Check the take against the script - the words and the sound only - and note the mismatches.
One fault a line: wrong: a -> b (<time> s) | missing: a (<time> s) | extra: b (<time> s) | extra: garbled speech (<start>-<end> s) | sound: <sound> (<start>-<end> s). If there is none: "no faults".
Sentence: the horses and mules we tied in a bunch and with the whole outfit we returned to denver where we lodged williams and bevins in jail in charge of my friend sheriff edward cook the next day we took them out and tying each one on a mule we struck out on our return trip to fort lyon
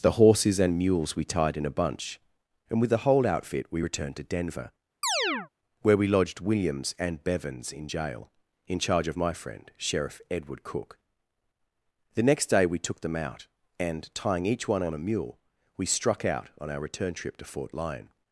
sound: chirp (5.0-5.5 s)